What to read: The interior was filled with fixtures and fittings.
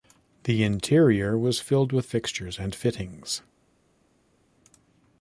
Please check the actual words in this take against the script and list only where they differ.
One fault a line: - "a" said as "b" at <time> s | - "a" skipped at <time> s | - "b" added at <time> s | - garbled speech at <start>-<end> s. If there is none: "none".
none